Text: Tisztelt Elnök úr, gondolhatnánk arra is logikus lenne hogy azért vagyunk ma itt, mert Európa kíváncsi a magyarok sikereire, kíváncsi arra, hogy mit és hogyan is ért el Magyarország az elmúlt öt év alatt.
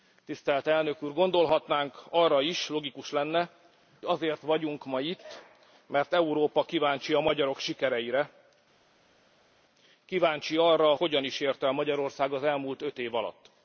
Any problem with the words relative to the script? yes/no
yes